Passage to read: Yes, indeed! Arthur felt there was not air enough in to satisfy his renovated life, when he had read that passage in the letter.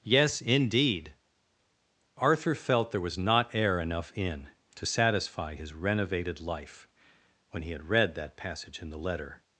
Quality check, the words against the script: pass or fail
pass